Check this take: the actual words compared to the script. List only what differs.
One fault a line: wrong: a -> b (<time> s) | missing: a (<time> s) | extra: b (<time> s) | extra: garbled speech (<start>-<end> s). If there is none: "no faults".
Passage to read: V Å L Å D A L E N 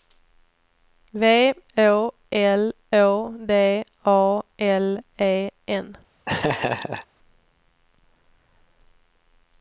no faults